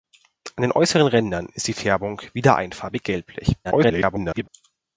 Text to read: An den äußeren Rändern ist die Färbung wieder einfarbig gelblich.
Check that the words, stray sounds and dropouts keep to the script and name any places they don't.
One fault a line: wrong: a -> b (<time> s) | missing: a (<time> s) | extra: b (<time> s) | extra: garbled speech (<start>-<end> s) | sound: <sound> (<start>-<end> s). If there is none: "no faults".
extra: garbled speech (3.6-4.5 s)